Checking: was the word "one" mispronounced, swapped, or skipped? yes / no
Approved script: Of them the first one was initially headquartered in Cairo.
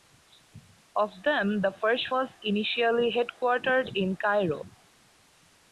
yes